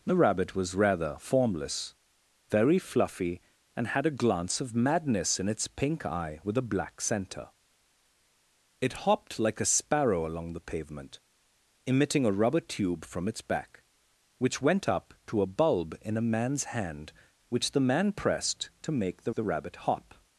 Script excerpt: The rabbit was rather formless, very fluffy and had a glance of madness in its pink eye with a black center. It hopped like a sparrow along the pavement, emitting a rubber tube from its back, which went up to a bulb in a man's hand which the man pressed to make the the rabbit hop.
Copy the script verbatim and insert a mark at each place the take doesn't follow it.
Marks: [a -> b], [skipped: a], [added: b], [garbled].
The rabbit was rather formless, very fluffy and had a glance of madness in its pink eye with a black center. It hopped like a sparrow along the pavement, emitting a rubber tube from its back, which went up to a bulb in a man's hand which the man pressed to make the the rabbit hop.